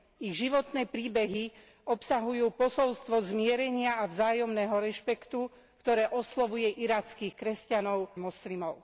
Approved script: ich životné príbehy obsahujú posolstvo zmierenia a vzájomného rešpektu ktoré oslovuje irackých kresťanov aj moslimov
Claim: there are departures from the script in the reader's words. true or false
true